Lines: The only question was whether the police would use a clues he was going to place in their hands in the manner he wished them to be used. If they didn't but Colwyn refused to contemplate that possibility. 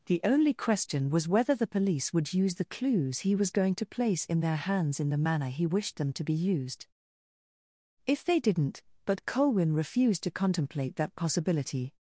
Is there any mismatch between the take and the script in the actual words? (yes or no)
yes